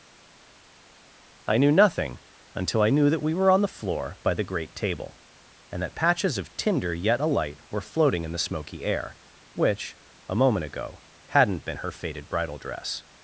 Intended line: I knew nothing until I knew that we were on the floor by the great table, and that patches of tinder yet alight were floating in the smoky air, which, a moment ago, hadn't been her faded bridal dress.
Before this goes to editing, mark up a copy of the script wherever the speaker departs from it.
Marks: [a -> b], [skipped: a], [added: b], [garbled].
I knew nothing until I knew that we were on the floor by the great table, and that patches of tinder yet alight were floating in the smoky air, which, a moment ago, hadn't been her faded bridal dress.